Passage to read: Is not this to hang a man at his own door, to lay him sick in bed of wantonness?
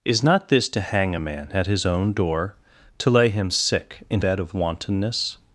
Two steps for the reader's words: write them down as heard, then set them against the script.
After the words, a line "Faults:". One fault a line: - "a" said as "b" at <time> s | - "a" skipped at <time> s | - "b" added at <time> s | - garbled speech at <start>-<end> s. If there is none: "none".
Is not this to hang a man at his own door, to lay him sick in bed of wantonness?
Faults:
none